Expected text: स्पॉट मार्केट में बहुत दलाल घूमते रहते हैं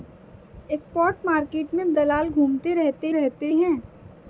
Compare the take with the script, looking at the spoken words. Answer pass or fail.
fail